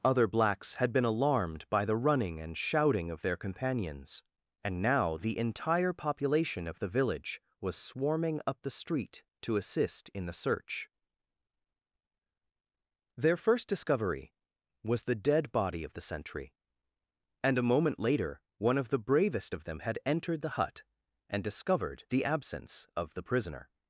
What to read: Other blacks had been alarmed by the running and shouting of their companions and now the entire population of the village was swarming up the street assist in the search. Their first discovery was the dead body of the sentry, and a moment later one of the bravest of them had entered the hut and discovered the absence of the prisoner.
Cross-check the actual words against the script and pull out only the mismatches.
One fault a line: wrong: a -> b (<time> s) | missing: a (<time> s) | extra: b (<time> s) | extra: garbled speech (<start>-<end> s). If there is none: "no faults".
extra: to (9.4 s)